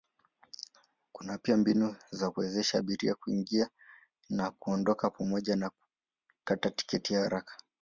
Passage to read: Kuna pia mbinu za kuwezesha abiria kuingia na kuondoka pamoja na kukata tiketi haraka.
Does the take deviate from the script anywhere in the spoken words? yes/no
no